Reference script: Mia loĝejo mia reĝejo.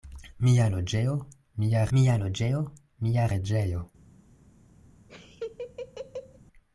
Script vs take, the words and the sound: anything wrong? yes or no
yes